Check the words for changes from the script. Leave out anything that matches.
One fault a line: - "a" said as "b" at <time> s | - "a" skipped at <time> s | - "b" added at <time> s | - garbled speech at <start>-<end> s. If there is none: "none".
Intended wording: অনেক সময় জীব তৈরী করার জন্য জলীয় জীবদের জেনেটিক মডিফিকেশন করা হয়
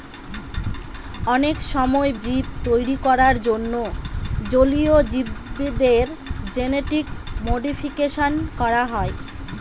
none